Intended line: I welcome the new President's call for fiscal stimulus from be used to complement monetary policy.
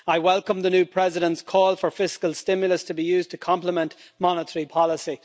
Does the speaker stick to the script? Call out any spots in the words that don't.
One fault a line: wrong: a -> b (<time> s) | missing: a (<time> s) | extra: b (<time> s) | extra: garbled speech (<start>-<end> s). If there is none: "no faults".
wrong: from -> to (2.9 s)